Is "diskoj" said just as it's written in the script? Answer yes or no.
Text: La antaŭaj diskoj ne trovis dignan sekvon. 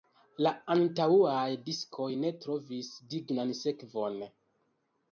yes